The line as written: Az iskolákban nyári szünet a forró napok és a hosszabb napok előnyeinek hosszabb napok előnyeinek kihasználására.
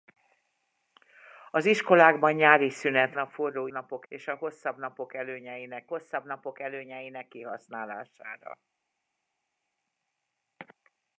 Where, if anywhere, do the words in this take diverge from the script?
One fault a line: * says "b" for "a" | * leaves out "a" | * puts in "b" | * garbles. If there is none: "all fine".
all fine